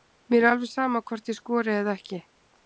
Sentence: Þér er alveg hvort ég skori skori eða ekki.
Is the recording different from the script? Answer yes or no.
yes